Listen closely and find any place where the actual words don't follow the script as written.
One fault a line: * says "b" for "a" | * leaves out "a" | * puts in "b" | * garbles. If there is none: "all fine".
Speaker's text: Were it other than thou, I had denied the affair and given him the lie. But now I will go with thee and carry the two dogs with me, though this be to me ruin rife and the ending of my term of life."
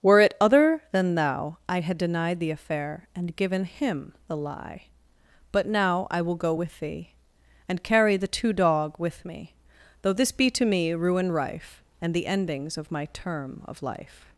* says "dog" for "dogs"
* says "endings" for "ending"